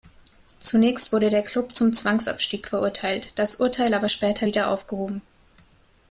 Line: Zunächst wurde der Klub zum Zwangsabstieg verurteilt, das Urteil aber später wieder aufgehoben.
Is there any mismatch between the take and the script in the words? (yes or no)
no